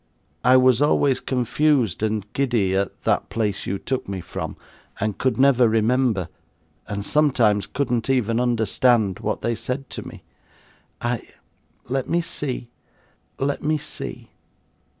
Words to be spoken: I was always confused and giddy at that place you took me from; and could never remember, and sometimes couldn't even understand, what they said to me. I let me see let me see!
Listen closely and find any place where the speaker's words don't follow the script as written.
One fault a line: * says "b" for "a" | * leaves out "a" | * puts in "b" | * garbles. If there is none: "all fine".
all fine